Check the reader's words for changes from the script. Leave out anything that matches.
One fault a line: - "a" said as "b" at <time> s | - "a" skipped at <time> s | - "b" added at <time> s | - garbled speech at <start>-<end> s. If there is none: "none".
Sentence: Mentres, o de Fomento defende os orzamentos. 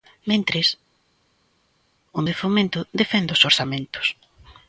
none